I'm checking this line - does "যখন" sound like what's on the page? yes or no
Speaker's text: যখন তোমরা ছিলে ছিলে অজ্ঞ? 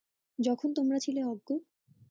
yes